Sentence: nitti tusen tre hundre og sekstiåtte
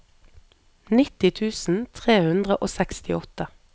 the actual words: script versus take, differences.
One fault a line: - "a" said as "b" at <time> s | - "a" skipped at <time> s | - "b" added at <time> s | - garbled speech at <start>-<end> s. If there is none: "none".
none